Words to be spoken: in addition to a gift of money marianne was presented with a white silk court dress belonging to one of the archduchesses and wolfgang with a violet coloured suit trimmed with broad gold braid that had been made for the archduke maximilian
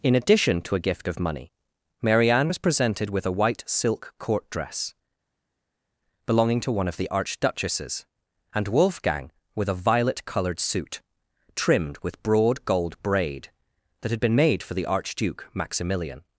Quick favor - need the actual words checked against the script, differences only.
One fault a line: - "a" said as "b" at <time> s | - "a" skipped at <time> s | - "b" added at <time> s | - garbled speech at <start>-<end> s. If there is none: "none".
none